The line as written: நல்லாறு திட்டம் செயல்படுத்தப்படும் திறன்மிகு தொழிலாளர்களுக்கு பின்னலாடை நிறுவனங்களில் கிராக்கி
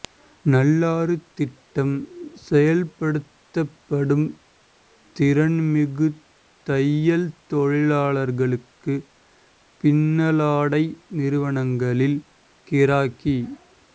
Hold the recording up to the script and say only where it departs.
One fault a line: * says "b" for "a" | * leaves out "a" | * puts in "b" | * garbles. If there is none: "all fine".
* puts in "தையல்"